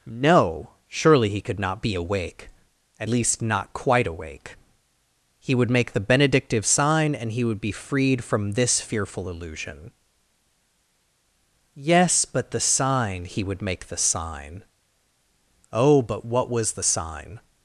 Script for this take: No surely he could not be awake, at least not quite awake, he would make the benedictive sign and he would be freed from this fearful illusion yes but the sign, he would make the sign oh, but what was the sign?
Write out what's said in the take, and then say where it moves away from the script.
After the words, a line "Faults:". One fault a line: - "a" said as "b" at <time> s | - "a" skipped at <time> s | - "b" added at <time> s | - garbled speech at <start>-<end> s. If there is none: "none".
No surely he could not be awake, at least not quite awake, he would make the benedictive sign and he would be freed from this fearful illusion yes but the sign, he would make the sign oh, but what was the sign?
Faults:
none